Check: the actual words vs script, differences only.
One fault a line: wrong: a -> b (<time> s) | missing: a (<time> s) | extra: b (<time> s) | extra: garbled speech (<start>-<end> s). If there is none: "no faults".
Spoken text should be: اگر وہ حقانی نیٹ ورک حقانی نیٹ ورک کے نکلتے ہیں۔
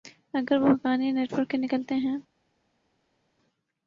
missing: حقانی نیٹ ورک (1.5 s)